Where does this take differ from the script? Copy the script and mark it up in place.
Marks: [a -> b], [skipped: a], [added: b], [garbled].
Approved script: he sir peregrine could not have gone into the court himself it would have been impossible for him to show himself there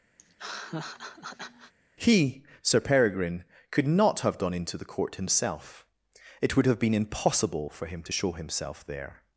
he sir peregrine could not have gone into the court himself it would have been impossible for him to show himself there